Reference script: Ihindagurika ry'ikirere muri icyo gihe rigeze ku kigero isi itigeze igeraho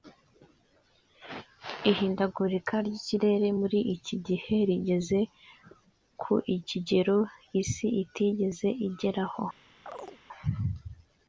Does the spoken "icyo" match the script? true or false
false